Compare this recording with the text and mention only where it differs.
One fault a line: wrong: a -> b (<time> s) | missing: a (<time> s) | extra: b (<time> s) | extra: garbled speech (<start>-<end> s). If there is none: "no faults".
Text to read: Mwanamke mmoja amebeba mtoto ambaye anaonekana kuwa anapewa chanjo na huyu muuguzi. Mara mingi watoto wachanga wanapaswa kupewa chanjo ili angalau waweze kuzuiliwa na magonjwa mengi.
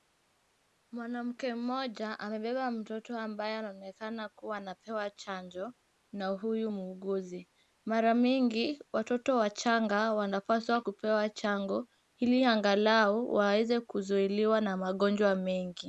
no faults